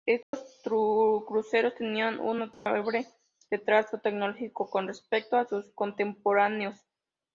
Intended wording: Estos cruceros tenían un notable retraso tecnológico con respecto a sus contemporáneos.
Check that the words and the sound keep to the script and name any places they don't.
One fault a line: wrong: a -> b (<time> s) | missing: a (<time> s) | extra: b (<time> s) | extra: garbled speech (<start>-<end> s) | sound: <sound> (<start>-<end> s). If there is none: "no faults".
sound: dropout (0.2-0.3 s)
sound: dropout (2.5-2.7 s)